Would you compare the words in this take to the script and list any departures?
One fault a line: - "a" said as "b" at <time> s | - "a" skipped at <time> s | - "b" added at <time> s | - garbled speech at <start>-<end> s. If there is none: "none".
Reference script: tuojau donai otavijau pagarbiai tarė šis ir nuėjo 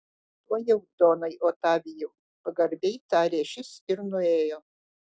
none